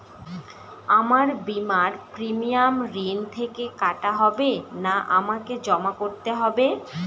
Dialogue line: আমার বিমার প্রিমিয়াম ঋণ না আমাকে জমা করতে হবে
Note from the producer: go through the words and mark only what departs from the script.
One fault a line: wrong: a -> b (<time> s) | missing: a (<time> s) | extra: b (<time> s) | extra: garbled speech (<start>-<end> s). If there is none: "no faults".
extra: থেকে কাটা হবে (3.4 s)